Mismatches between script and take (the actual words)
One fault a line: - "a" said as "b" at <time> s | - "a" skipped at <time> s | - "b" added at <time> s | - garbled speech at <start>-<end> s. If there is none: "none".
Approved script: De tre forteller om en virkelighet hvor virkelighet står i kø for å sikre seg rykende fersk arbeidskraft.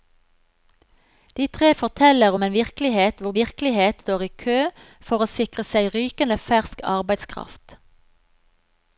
none